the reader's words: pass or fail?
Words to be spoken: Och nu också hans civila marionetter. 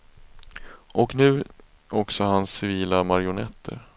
pass